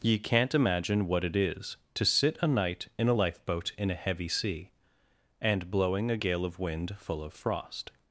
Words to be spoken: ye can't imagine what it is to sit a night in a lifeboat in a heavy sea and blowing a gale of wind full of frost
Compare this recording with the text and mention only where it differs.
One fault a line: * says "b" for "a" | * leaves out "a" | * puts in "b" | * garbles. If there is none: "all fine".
all fine